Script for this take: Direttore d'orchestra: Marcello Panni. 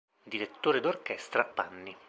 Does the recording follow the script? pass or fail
fail